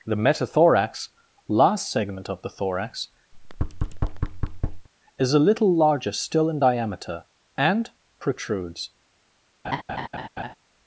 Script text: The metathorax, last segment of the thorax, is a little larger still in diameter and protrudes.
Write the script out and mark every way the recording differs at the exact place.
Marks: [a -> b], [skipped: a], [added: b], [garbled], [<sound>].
The metathorax, last segment of the thorax, [thud] is a little larger still in diameter and protrudes. [laugh]